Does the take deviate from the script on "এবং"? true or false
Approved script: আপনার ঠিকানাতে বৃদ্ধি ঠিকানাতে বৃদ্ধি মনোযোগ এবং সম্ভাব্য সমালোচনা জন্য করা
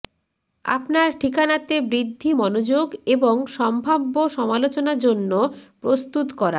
false